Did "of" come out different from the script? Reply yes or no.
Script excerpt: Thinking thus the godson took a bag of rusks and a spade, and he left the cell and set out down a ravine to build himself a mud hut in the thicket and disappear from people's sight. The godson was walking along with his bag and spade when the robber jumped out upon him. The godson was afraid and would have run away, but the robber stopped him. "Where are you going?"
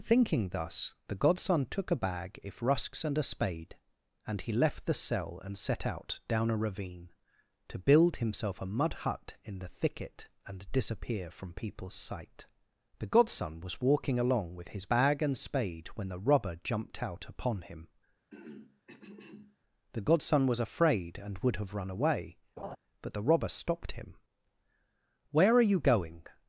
yes